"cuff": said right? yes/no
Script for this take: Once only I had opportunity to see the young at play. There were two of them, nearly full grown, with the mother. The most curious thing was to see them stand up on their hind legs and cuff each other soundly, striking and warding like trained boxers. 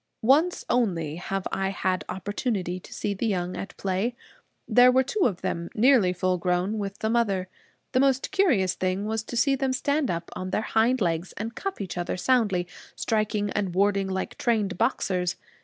yes